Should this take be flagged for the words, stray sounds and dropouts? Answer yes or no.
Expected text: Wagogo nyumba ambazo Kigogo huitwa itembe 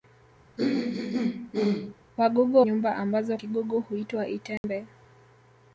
yes